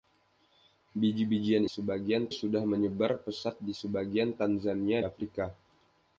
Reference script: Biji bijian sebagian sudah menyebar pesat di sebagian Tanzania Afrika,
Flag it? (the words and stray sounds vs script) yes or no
no